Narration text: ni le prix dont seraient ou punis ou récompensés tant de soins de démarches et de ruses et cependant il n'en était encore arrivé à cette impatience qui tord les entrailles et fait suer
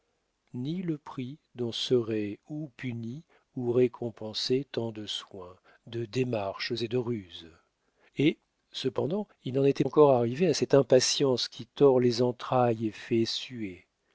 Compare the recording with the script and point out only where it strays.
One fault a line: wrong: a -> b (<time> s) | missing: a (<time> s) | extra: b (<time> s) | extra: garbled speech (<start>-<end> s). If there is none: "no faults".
no faults